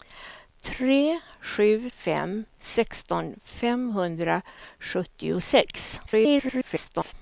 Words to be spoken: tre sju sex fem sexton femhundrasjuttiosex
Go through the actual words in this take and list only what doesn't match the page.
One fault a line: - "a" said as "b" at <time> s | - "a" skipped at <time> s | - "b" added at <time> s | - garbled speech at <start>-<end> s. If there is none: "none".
- "sex" skipped at 1.9 s
- garbled speech at 6.1-7.1 s